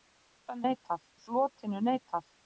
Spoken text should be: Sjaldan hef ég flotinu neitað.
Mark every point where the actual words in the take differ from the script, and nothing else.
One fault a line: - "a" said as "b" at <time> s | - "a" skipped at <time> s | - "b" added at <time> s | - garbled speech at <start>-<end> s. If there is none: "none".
- "hef" said as "neitað" at 0.7 s